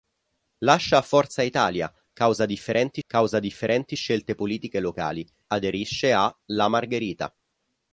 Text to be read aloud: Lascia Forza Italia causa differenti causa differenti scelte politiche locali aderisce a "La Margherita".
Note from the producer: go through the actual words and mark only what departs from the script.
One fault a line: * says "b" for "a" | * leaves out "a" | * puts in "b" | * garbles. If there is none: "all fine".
all fine